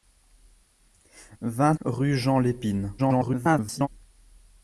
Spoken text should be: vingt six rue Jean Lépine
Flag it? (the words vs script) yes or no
yes